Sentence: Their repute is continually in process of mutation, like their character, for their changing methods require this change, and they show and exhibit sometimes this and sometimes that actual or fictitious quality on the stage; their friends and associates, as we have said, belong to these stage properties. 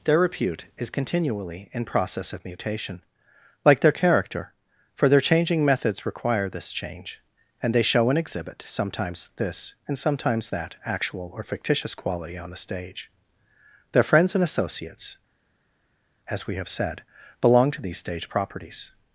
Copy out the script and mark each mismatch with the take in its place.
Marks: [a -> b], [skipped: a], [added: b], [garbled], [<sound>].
Their repute is continually in process of mutation, like their character, for their changing methods require this change, and they show and exhibit sometimes this and sometimes that actual or fictitious quality on the stage; their friends and associates, as we have said, belong to these stage properties.